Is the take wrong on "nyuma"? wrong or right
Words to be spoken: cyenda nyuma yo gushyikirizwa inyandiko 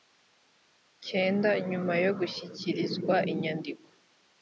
right